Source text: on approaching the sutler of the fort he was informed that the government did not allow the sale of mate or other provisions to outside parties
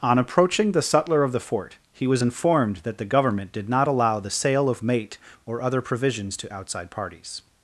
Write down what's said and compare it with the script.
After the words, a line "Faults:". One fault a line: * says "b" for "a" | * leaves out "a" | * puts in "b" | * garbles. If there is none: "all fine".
on approaching the sutler of the fort he was informed that the government did not allow the sale of mate or other provisions to outside parties
Faults:
all fine